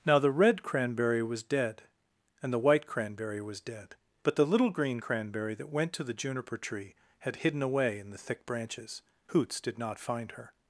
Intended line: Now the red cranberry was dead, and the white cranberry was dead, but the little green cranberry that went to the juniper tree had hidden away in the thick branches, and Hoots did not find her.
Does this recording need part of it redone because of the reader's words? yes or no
yes